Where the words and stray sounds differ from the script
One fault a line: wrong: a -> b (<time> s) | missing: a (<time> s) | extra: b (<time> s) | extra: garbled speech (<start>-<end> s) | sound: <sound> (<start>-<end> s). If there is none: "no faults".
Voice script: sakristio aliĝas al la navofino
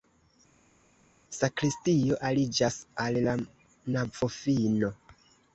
no faults